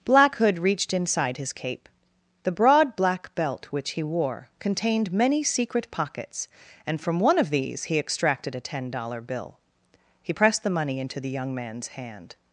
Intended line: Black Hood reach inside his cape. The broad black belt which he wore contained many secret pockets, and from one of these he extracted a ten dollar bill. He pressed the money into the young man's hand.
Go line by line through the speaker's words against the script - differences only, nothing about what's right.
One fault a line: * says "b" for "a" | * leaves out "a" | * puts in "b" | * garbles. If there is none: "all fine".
* says "reached" for "reach"